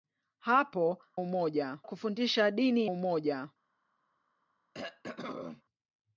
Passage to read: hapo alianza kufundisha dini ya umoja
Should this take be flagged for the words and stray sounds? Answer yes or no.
yes